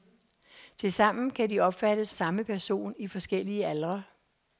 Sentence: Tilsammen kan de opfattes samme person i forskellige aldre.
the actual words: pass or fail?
pass